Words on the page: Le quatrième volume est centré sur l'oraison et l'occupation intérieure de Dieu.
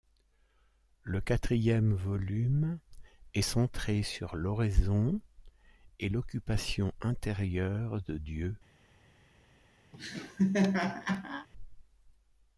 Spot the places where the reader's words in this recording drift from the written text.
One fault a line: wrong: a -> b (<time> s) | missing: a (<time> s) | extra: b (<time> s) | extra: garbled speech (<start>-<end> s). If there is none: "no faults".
no faults